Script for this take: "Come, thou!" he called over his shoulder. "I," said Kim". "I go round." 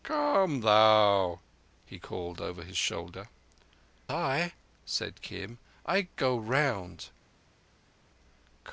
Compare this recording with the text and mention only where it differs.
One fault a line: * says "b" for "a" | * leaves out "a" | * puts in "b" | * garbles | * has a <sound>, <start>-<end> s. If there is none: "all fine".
all fine